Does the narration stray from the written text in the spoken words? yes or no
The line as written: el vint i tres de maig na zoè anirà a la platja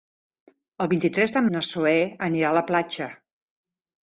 yes